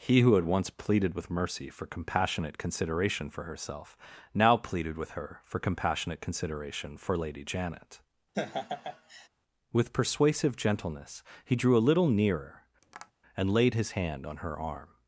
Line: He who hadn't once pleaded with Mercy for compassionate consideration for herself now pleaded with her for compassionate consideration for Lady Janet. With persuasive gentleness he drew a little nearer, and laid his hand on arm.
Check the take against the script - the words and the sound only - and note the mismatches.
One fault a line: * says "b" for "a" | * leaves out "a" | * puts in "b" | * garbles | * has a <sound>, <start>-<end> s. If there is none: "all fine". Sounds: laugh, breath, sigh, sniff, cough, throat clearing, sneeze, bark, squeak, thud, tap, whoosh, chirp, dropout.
* says "had" for "hadn't"
* has a laugh, 8.3-9.3 s
* has a tap, 12.8-13.1 s
* puts in "her"